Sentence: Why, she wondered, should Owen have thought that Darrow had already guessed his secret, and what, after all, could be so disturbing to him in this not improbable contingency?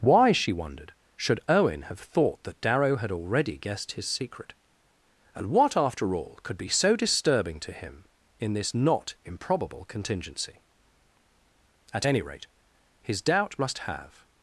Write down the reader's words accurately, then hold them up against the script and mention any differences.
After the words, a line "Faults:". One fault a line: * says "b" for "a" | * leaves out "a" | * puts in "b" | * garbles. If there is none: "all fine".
Why, she wondered, should Owen have thought that Darrow had already guessed his secret, and what, after all, could be so disturbing to him in this not improbable contingency? At any rate, his doubt must have
Faults:
* puts in "At any rate his doubt must have"